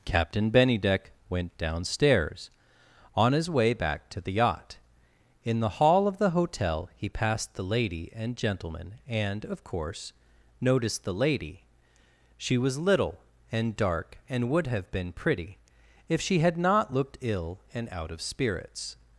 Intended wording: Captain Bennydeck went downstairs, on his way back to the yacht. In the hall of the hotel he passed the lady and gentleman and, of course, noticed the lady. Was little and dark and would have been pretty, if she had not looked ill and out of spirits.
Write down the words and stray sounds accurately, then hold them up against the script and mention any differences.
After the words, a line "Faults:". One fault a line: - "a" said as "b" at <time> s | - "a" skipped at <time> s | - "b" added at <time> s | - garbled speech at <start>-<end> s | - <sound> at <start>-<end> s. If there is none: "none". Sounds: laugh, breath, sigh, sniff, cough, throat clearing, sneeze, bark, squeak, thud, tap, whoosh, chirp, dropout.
Captain Bennydeck went downstairs, on his way back to the yacht. In the hall of the hotel he passed the lady and gentleman and, of course, noticed the lady. She was little and dark and would have been pretty, if she had not looked ill and out of spirits.
Faults:
- "She" added at 12.4 s